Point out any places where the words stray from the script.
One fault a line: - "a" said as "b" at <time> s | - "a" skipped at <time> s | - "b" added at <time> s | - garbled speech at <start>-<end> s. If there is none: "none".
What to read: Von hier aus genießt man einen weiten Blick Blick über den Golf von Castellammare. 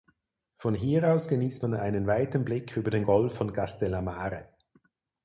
- "Blick" skipped at 2.8 s